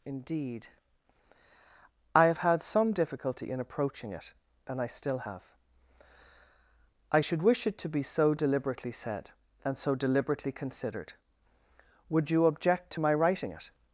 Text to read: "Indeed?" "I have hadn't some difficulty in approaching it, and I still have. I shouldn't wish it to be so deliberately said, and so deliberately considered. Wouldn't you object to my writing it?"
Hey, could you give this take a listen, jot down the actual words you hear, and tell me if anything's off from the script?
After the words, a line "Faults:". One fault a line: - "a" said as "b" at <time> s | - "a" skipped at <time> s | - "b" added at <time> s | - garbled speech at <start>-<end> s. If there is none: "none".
"Indeed?" "I have had some difficulty in approaching it, and I still have. I should wish it to be so deliberately said, and so deliberately considered. Would you object to my writing it?"
Faults:
- "hadn't" said as "had" at 2.4 s
- "shouldn't" said as "should" at 7.2 s
- "Wouldn't" said as "Would" at 12.1 s